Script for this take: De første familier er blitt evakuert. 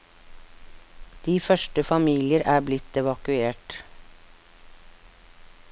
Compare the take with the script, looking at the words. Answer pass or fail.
pass